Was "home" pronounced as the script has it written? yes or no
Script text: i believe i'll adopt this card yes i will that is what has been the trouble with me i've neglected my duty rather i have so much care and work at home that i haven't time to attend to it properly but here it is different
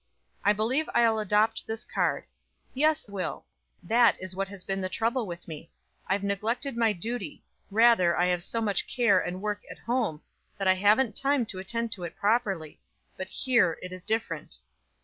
yes